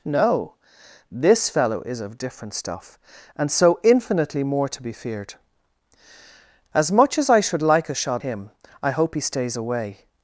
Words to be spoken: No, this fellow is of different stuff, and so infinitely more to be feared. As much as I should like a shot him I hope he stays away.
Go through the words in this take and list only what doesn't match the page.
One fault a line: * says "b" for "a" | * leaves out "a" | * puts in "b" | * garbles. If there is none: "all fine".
all fine